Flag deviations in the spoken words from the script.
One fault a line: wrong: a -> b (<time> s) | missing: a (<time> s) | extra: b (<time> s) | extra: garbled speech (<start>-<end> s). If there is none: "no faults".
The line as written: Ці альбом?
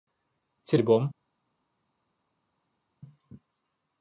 no faults